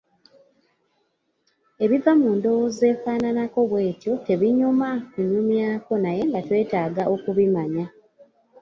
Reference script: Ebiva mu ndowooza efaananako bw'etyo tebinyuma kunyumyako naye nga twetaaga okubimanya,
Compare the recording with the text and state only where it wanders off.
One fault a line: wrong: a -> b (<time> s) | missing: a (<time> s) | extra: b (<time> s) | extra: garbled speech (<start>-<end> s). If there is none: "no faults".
no faults